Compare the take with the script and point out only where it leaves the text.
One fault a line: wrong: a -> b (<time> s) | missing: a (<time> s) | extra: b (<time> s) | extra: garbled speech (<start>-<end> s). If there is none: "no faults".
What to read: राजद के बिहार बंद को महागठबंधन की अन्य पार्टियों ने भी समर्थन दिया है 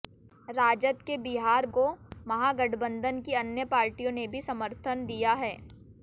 missing: बंद (1.6 s)